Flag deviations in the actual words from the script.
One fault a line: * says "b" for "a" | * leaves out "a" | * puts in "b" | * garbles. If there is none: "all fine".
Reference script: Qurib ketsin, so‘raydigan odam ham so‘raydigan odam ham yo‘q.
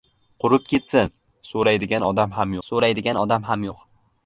all fine